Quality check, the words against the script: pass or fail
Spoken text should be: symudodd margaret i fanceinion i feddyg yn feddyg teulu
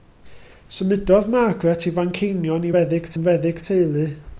pass